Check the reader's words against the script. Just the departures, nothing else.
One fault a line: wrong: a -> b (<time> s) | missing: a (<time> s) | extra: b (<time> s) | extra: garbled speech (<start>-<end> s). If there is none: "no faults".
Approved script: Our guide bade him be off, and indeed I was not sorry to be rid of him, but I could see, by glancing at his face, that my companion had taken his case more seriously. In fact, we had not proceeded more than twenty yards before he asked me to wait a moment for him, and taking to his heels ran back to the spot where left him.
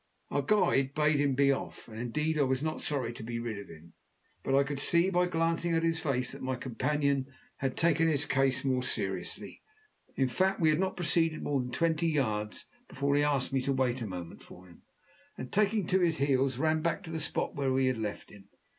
extra: we had (17.7 s)